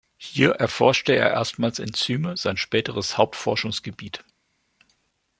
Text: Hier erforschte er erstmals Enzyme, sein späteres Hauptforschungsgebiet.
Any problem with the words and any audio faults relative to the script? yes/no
no